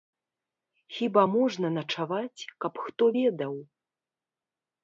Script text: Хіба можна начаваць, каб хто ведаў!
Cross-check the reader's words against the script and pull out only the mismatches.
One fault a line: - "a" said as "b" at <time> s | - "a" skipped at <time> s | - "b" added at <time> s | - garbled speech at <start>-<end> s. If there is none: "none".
none